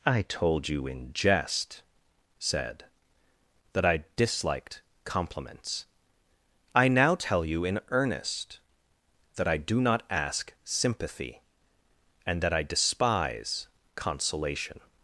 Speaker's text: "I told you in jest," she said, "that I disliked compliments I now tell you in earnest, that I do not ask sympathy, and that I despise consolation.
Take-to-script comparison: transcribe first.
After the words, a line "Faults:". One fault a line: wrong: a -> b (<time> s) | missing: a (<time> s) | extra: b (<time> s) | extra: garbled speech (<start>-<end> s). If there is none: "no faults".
"I told you in jest," said, "that I disliked compliments I now tell you in earnest, that I do not ask sympathy, and that I despise consolation.
Faults:
missing: she (1.8 s)